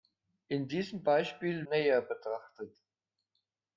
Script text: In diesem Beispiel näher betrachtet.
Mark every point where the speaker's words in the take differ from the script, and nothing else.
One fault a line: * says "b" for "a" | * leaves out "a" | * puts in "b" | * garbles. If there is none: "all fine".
all fine